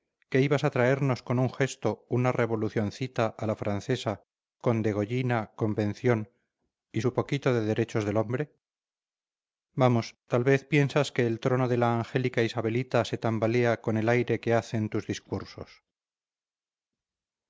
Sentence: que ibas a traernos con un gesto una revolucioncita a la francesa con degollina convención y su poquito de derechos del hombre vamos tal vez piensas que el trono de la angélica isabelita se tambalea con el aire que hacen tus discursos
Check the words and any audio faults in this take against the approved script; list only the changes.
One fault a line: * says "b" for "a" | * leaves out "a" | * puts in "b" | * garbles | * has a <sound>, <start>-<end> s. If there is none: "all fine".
all fine